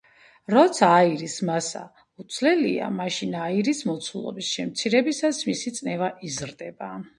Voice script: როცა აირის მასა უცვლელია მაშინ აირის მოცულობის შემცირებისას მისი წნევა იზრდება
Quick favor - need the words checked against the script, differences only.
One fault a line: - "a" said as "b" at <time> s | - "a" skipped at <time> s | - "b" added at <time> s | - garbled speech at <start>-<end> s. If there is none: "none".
none